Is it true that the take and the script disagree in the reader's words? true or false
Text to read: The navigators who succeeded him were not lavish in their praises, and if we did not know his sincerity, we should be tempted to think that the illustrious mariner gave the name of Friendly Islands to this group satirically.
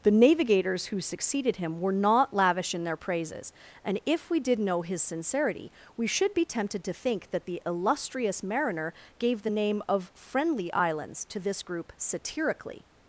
true